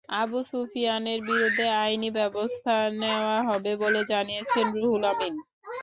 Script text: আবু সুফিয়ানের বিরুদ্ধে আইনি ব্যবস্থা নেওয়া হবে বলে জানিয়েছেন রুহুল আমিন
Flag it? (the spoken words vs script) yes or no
no